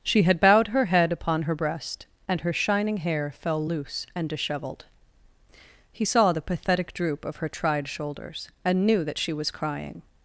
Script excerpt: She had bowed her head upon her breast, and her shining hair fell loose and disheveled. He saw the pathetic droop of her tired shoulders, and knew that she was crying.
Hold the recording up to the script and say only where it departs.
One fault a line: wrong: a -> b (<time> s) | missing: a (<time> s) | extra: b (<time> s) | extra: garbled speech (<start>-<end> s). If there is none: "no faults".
wrong: tired -> tried (7.5 s)